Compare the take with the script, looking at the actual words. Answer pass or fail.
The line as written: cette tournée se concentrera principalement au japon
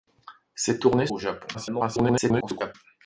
fail